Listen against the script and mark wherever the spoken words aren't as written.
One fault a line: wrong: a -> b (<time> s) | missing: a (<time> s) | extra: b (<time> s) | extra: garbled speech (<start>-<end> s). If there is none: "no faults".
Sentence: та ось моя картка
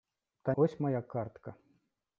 no faults